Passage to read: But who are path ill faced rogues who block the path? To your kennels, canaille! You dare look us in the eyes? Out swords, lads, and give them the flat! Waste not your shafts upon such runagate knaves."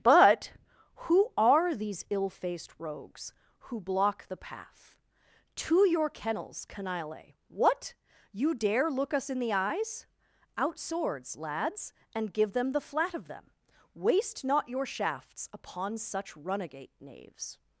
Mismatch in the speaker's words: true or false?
true